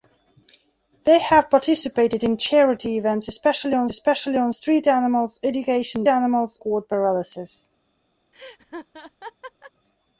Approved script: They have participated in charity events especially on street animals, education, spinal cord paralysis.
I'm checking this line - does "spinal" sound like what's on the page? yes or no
no